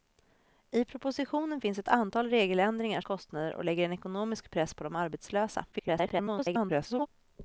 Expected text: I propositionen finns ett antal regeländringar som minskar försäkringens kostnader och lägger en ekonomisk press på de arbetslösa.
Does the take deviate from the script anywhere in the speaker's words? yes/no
yes